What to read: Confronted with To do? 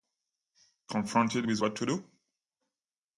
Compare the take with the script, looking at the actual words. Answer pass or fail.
fail